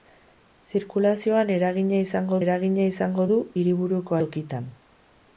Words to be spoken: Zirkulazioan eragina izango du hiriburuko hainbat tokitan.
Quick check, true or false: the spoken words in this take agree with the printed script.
false